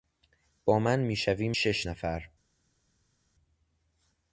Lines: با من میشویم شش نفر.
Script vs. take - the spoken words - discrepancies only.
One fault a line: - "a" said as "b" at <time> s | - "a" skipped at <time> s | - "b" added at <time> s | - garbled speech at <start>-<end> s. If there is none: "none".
none